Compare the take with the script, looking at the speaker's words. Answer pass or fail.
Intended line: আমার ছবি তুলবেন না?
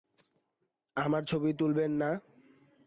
pass